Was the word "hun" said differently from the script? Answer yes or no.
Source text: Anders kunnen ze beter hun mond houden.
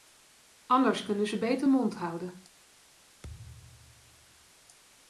yes